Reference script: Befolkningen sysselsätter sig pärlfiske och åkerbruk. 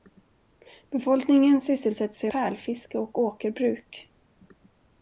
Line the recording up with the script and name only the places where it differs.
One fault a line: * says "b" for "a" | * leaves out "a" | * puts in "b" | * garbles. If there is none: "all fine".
all fine